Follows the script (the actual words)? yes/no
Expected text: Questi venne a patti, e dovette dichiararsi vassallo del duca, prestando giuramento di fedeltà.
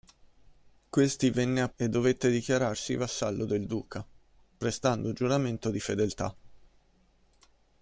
no